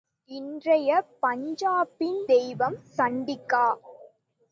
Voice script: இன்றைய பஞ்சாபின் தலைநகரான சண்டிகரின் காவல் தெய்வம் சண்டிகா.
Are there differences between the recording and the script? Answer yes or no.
yes